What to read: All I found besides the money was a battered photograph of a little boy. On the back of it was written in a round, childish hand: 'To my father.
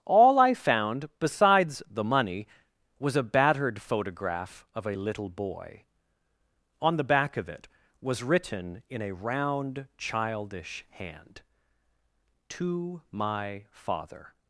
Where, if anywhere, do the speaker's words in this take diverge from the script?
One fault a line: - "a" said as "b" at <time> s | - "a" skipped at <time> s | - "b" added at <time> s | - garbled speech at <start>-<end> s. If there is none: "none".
none